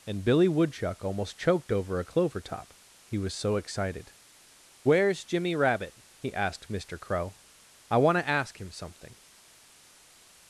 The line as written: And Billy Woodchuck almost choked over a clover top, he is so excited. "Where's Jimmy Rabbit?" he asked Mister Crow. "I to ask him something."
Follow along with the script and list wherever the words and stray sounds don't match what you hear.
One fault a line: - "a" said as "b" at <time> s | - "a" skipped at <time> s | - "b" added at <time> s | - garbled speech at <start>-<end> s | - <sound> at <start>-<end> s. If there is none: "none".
- "is" said as "was" at 3.2 s
- "want" added at 8.0 s